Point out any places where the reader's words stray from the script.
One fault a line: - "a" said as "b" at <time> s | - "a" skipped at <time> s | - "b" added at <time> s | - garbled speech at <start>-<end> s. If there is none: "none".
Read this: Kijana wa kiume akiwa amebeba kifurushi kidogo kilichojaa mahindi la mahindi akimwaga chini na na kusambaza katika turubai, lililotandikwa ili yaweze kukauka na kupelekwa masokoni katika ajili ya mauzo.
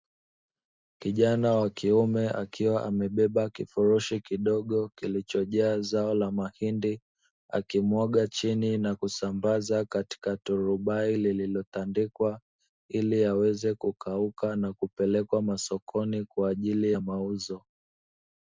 - "mahindi" said as "zao" at 5.8 s
- "na" skipped at 9.0 s
- "katika" said as "kwa" at 16.3 s